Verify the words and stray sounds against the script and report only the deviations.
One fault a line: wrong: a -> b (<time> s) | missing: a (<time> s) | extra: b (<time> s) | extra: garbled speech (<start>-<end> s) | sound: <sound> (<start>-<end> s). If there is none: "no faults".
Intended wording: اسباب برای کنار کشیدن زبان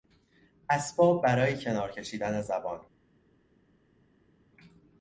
no faults